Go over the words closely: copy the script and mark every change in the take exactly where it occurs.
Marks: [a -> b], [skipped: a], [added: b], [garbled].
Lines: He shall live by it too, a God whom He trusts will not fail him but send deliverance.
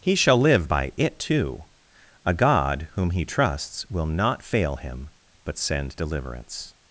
He shall live by it too, a God whom He trusts will not fail him but send deliverance.